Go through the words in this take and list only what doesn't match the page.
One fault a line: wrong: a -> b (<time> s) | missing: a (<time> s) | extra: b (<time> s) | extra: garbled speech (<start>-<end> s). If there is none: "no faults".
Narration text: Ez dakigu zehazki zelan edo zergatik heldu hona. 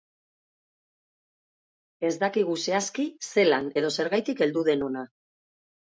extra: den (4.7 s)